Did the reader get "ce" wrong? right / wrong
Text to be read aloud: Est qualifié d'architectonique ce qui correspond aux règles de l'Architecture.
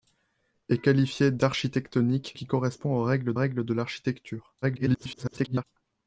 wrong